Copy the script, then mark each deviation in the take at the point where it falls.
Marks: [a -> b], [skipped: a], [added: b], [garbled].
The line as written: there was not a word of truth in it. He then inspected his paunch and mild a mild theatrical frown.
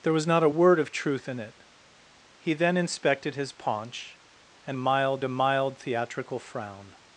there was not a word of truth in it. He then inspected his paunch and mild a mild theatrical frown.